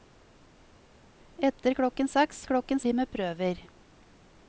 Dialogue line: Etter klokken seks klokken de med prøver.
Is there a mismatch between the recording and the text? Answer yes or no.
no